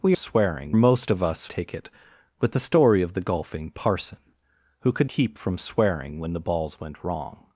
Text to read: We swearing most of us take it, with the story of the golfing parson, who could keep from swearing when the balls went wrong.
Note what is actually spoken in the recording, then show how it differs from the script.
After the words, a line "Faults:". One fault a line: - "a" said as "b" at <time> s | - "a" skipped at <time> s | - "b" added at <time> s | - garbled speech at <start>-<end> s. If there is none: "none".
We swearing most of us take it, with the story of the golfing parson, who could keep from swearing when the balls went wrong.
Faults:
none